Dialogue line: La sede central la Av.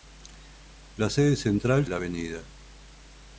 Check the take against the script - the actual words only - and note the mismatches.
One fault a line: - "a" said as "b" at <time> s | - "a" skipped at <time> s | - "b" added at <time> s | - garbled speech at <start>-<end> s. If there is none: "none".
none